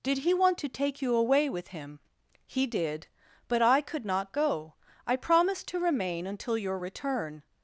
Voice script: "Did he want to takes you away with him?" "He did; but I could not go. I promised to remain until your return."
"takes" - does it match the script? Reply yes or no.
no